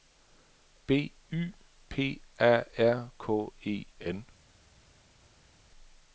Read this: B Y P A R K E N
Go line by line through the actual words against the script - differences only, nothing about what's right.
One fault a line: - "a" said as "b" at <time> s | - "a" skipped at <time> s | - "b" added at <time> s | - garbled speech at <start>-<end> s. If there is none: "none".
none